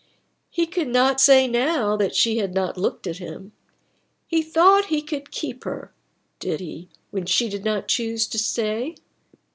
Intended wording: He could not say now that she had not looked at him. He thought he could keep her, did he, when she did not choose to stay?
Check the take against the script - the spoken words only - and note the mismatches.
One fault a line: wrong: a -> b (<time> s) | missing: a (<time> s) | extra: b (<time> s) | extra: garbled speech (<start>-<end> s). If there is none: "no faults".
no faults